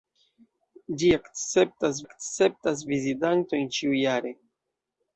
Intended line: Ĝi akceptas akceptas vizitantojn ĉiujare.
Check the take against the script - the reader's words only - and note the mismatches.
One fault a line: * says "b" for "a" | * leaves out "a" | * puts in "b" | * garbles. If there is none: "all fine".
all fine